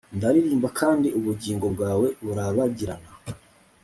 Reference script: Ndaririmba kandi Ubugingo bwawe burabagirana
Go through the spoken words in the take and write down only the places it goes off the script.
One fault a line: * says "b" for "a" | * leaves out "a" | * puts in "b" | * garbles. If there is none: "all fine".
all fine